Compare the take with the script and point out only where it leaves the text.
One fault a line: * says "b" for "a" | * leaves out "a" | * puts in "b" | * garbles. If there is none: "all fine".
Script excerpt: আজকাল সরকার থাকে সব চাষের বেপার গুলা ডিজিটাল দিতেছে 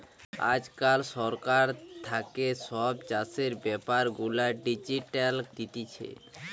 all fine